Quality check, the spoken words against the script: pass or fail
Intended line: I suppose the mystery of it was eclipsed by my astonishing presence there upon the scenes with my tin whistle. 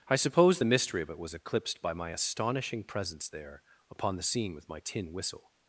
fail